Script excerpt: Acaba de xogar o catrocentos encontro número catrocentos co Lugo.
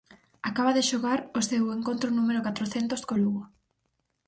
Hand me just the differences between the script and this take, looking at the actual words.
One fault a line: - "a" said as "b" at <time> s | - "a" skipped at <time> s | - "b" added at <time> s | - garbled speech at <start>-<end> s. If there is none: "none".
- "catrocentos" said as "seu" at 1.5 s